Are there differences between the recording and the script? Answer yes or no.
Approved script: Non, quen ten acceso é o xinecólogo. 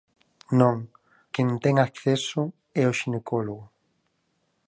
no